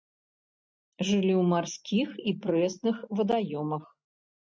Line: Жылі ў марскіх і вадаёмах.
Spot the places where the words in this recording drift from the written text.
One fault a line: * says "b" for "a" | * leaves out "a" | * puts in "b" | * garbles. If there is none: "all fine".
* puts in "прэсных"